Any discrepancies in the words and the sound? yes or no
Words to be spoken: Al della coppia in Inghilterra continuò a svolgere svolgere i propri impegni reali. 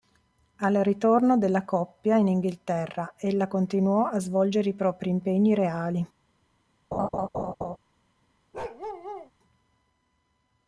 yes